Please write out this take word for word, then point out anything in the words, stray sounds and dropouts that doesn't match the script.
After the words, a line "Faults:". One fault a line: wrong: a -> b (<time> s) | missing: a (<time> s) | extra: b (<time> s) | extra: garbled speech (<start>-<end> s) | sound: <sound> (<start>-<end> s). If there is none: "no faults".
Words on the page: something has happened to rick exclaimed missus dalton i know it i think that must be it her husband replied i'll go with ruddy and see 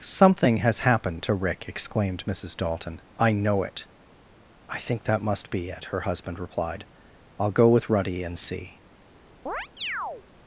something has happened to rick exclaimed missus dalton i know it i think that must be it her husband replied i'll go with ruddy and see
Faults:
sound: chirp (9.5-10.3 s)